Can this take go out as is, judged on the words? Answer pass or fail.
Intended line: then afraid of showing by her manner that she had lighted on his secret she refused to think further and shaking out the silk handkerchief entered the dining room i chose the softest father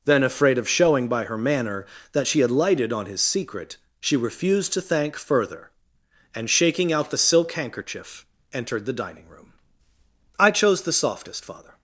fail